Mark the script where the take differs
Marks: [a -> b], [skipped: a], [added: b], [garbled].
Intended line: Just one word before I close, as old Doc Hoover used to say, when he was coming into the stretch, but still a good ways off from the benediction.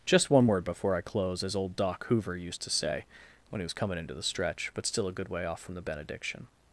Just one word before I close, as old Doc Hoover used to say, when he was coming into the stretch, but still a good [ways -> way] off from the benediction.